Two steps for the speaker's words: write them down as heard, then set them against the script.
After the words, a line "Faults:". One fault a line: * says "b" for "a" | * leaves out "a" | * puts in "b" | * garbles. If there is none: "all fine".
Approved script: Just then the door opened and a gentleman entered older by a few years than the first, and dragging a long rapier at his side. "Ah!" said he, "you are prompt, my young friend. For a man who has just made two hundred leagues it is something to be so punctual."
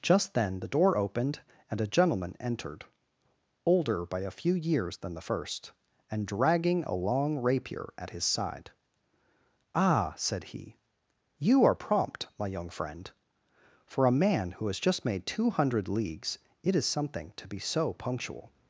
Just then the door opened and a gentleman entered older by a few years than the first, and dragging a long rapier at his side. "Ah!" said he, "you are prompt, my young friend. For a man who has just made two hundred leagues it is something to be so punctual."
Faults:
all fine